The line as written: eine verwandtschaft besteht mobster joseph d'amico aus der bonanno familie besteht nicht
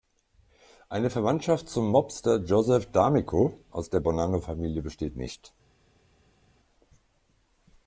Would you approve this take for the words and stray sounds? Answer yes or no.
no